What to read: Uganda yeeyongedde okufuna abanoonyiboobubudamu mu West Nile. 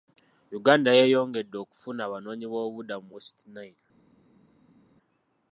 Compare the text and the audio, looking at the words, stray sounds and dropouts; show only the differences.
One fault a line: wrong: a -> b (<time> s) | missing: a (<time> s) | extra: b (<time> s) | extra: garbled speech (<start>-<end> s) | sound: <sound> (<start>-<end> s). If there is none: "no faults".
no faults